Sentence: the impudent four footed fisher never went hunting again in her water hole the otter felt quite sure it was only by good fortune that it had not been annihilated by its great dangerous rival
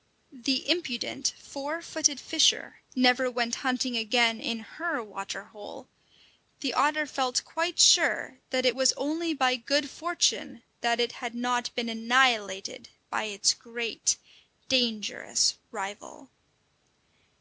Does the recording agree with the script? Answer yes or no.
no